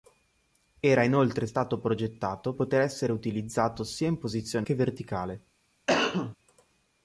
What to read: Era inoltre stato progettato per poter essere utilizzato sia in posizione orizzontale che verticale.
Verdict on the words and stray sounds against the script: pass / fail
fail